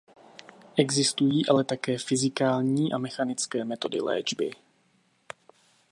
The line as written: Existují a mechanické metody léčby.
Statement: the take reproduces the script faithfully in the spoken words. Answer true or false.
false